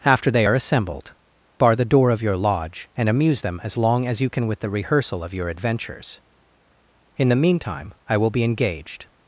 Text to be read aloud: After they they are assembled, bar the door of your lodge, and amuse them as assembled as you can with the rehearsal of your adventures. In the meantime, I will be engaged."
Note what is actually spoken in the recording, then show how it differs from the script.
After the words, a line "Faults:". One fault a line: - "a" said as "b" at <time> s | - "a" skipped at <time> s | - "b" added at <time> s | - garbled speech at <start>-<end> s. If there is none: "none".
After they are assembled, bar the door of your lodge, and amuse them as long as you can with the rehearsal of your adventures. In the meantime, I will be engaged."
Faults:
- "they" skipped at 0.5 s
- "assembled" said as "long" at 3.8 s